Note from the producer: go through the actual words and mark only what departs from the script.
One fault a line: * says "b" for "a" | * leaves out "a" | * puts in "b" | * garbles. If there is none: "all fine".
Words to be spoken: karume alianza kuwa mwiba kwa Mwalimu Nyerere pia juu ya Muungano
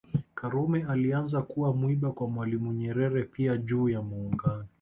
all fine